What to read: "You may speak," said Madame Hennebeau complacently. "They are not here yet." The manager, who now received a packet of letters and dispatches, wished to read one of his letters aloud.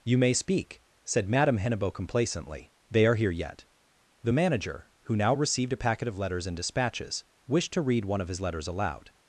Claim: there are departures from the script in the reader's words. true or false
true